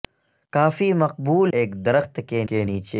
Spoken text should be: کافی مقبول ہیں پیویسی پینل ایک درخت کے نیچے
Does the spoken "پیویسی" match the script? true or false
false